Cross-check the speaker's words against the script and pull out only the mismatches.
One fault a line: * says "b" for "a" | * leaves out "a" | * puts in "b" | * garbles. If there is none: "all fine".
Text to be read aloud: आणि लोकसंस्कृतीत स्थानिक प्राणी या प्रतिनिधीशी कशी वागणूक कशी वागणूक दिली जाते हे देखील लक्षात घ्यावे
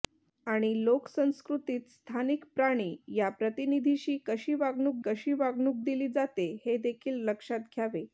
all fine